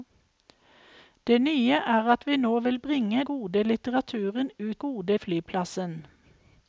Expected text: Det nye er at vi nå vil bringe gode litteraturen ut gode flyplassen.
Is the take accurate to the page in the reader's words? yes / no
yes